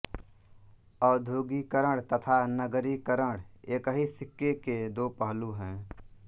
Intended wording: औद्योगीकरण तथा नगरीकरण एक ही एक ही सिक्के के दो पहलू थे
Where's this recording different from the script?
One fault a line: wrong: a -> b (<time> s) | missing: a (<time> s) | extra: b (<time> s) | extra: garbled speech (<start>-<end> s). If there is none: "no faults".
missing: एक ही (4.1 s)
wrong: थे -> हैं (5.5 s)